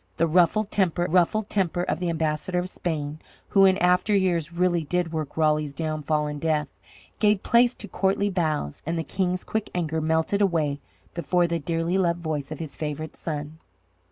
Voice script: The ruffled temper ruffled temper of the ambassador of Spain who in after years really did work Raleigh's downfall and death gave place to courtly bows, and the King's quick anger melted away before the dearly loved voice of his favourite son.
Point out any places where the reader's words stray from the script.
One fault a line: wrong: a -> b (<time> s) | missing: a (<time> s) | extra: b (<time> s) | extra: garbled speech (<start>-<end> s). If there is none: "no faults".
no faults